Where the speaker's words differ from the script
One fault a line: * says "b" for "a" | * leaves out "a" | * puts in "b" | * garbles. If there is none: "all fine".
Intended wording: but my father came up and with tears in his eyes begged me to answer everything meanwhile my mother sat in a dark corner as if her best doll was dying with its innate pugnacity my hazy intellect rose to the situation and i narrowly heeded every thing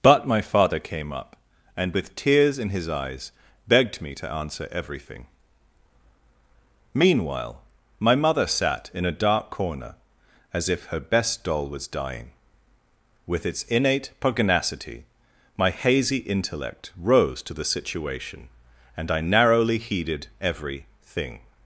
all fine